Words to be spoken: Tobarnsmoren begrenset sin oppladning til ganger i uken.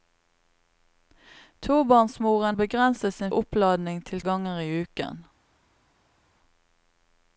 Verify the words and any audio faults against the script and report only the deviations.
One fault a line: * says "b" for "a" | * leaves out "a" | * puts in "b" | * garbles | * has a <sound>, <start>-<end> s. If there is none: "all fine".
all fine